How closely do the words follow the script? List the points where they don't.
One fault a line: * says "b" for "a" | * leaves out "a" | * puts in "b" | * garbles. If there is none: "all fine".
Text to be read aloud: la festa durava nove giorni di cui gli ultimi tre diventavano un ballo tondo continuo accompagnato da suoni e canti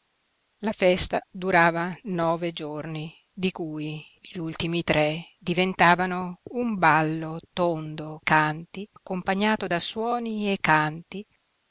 * says "canti" for "continuo"